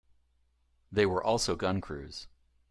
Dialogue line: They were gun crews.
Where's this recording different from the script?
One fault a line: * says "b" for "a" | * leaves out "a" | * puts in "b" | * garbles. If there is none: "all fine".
* puts in "also"